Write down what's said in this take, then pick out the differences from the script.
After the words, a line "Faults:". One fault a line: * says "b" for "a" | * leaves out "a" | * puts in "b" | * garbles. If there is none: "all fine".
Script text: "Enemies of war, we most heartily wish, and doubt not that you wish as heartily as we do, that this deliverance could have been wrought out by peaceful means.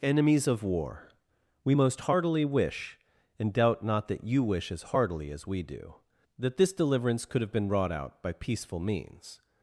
"Enemies of war, we most heartily wish, and doubt not that you wish as heartily as we do, that this deliverance could have been wrought out by peaceful means.
Faults:
all fine